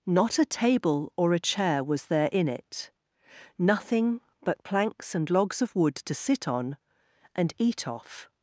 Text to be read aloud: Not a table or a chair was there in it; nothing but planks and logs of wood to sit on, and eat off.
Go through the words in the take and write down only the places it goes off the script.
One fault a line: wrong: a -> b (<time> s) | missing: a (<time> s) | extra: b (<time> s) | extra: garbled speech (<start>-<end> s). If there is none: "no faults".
no faults